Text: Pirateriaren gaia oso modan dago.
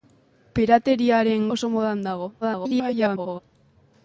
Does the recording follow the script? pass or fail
fail